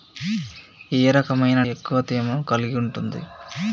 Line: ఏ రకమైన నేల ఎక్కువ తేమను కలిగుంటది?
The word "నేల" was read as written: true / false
false